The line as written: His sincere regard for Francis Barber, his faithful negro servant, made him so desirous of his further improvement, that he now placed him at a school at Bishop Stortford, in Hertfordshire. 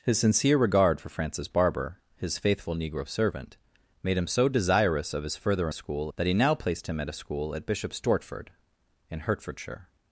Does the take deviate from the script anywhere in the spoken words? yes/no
yes